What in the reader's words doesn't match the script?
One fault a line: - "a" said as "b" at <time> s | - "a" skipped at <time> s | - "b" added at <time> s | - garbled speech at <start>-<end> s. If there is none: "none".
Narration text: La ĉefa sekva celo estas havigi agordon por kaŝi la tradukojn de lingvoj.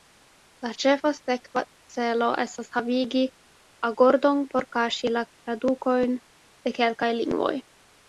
- "kelkaj" added at 6.8 s